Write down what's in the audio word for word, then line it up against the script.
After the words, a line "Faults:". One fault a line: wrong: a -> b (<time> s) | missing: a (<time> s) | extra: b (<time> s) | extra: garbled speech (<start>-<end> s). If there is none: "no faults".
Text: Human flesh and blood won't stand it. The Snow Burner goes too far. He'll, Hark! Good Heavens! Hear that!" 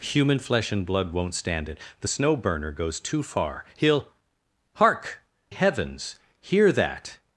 Human flesh and blood won't stand it. The Snow Burner goes too far. He'll, Hark! Heavens! Hear that!"
Faults:
missing: Good (5.2 s)